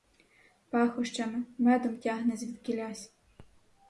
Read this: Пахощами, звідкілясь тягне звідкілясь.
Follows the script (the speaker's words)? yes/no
no